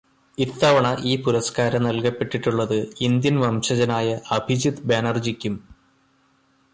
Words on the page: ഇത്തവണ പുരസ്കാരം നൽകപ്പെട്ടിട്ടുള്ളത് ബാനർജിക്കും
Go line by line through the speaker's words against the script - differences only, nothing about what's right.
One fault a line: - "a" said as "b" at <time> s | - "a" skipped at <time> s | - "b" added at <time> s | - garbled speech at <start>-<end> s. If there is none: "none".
- "ഈ" added at 1.0 s
- "ഇന്ത്യൻ വംശജനായ അഭിജിത്" added at 3.0 s